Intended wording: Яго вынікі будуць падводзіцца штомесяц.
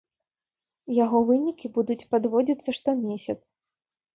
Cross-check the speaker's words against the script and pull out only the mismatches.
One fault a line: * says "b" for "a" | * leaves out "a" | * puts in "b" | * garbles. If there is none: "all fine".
all fine